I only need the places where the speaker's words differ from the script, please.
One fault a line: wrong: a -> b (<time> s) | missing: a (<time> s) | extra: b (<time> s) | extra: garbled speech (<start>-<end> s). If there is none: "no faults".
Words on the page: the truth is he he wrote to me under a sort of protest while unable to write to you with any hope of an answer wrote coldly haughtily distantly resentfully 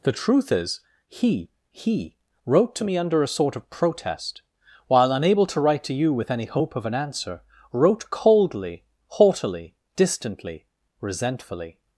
no faults